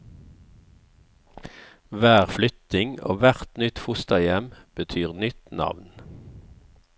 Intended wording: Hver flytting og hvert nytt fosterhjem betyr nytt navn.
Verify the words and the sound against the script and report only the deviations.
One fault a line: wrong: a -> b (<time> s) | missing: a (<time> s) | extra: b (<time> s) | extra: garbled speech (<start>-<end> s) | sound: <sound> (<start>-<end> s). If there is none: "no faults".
no faults